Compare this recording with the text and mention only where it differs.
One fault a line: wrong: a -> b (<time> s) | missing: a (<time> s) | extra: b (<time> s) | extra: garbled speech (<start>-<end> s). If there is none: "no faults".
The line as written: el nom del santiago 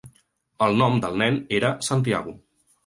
extra: nen era (1.2 s)